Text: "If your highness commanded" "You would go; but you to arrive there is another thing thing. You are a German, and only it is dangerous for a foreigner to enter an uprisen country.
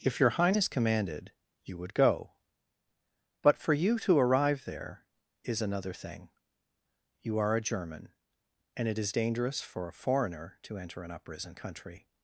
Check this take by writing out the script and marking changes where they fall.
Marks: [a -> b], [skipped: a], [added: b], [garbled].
"If your highness commanded" "You would go; but [added: for] you to arrive there is another thing [skipped: thing.] You are a German, and [skipped: only] it is dangerous for a foreigner to enter an uprisen country.